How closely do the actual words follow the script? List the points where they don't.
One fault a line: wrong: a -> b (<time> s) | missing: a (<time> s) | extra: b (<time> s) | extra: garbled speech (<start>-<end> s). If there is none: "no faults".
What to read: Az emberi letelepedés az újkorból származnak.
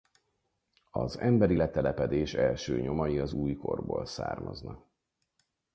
extra: első nyomai (2.3 s)